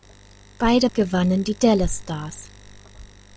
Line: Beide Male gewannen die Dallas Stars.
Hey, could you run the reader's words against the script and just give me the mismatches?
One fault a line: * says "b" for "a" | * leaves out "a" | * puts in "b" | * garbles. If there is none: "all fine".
* leaves out "Male"